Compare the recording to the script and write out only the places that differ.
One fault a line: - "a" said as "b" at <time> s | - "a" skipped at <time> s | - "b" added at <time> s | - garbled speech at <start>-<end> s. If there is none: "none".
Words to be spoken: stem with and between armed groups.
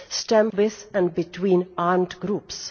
none